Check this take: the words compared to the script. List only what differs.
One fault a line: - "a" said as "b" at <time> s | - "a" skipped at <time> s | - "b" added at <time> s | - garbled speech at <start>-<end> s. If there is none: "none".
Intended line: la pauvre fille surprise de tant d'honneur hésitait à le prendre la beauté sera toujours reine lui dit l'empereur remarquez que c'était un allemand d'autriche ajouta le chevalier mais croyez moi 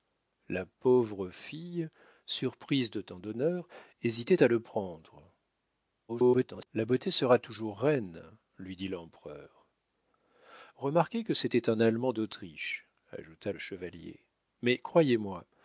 - garbled speech at 6.1-6.7 s